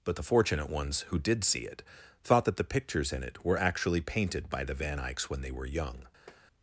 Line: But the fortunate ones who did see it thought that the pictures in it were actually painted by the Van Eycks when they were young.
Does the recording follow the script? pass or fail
pass